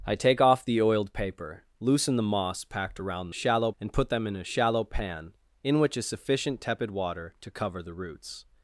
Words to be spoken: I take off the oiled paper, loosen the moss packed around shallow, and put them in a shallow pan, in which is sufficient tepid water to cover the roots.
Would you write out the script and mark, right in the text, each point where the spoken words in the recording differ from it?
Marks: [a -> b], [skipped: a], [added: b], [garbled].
I take off the oiled paper, loosen the moss packed around shallow, and put them in a shallow pan, in which is sufficient tepid water to cover the roots.